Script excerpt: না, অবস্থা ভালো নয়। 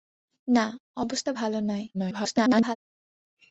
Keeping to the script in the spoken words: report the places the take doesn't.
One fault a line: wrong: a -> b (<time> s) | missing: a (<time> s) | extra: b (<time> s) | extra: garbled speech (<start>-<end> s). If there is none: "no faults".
extra: garbled speech (1.9-2.8 s)